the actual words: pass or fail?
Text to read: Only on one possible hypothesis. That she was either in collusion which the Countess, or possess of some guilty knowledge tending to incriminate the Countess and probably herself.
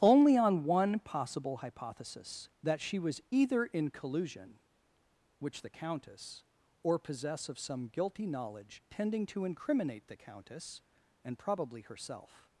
pass